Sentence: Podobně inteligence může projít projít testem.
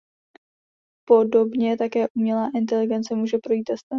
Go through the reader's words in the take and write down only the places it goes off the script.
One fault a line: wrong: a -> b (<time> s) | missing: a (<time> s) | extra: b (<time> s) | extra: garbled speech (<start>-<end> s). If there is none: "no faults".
extra: také umělá (1.8 s)
missing: projít (3.6 s)